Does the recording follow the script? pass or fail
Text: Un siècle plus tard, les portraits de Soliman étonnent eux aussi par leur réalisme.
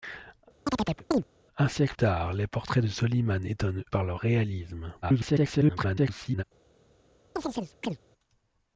fail